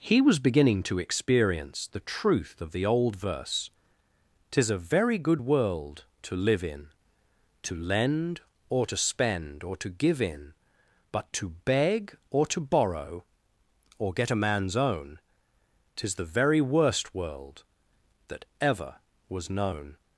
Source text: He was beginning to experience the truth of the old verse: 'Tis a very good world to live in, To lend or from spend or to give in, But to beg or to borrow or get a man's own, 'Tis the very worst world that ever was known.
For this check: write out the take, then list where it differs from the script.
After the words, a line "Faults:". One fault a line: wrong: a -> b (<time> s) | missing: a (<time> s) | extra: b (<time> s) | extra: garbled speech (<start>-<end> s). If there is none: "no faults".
He was beginning to experience the truth of the old verse: 'Tis a very good world to live in, To lend or to spend or to give in, But to beg or to borrow or get a man's own, 'Tis the very worst world that ever was known.
Faults:
wrong: from -> to (8.9 s)